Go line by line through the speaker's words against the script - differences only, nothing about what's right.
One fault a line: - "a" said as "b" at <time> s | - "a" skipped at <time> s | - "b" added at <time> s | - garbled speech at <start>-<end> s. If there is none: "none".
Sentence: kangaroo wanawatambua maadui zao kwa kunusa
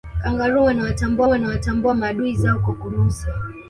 - "wanawatambua" added at 1.3 s